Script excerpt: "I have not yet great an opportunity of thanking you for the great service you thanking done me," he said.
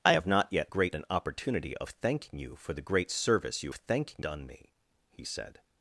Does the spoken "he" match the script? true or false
true